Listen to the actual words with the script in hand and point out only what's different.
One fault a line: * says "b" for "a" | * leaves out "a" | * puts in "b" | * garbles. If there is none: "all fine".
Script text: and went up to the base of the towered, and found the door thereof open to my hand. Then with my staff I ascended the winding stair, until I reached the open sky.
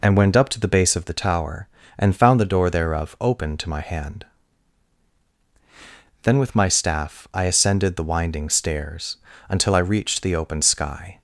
* says "tower" for "towered"
* says "stairs" for "stair"